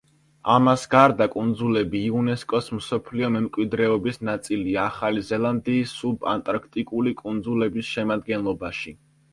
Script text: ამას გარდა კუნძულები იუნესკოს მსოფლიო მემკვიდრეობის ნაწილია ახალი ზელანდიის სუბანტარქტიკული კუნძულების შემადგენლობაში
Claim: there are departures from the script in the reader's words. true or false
false